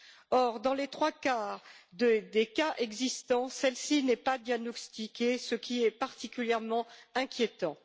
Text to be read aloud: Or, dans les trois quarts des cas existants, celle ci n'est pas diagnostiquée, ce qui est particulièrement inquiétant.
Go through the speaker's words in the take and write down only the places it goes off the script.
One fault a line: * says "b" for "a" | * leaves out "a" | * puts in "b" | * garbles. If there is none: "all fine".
all fine